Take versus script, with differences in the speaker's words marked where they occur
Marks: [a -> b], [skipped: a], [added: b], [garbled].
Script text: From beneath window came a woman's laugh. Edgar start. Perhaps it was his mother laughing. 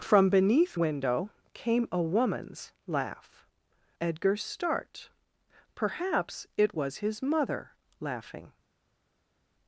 From beneath window came a woman's laugh. Edgar start. Perhaps it was his mother laughing.